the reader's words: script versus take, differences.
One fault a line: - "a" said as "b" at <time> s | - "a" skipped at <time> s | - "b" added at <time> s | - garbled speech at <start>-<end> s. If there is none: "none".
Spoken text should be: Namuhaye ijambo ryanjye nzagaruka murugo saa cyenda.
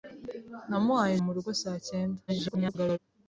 - "ijambo ryanjye nzagaruka" skipped at 1.1 s
- garbled speech at 2.3-3.0 s